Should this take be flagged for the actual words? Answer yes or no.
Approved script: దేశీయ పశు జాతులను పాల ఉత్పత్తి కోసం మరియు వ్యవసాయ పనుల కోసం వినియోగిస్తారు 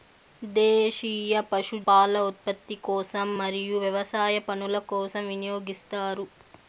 yes